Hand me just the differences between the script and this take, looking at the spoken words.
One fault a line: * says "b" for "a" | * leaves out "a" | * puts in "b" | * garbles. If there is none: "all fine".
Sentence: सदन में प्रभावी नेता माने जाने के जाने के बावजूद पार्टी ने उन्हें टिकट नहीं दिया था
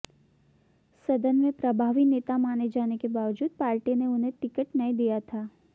* leaves out "जाने के"